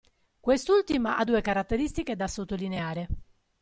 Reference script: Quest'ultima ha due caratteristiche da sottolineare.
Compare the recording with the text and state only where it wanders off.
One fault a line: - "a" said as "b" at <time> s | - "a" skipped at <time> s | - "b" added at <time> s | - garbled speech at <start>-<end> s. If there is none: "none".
none